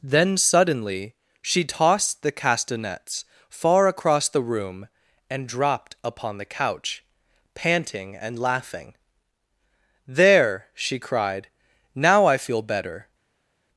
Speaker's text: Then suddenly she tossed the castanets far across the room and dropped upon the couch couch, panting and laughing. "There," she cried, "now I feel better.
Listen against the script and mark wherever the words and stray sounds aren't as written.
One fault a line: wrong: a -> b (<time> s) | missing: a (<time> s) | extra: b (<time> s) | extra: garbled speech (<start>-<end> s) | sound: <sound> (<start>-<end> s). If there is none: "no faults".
missing: couch (7.0 s)